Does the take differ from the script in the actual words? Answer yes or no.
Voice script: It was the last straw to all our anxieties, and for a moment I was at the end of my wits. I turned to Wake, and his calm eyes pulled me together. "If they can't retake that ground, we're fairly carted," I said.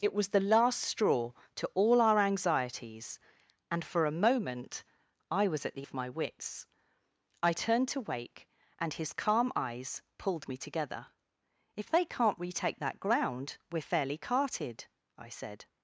yes